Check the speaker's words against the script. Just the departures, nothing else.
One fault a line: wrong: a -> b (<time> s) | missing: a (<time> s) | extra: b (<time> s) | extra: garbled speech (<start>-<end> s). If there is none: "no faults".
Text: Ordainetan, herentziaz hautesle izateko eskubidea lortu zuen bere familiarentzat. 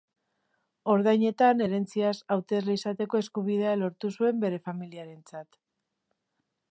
no faults